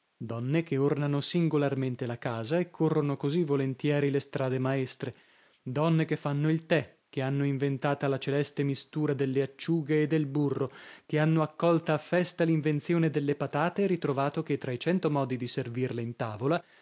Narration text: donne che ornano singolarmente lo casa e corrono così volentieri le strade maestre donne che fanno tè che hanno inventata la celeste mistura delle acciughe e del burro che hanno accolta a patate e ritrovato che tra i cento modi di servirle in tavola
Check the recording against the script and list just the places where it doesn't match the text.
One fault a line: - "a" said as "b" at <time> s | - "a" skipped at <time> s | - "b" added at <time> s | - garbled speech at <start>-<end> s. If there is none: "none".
- "lo" said as "la" at 2.1 s
- "il" added at 6.5 s
- "festa l'invenzione delle" added at 12.0 s